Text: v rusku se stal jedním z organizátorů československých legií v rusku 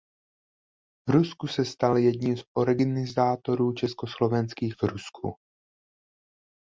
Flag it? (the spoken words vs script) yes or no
yes